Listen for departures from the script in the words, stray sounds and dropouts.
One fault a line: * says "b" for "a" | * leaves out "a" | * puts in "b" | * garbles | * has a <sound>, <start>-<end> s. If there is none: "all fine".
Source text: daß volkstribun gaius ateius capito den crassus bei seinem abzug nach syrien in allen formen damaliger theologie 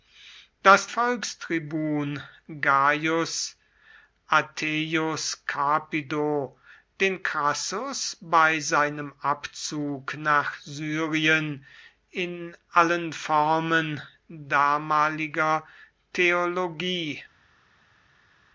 all fine